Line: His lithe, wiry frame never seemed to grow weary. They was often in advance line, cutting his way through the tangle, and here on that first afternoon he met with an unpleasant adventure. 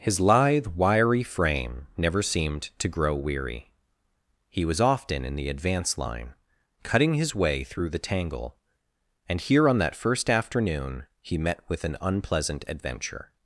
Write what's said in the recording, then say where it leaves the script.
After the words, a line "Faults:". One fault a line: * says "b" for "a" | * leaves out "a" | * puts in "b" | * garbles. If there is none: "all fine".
His lithe, wiry frame never seemed to grow weary. He was often in the advance line, cutting his way through the tangle, and here on that first afternoon he met with an unpleasant adventure.
Faults:
* says "He" for "They"
* puts in "the"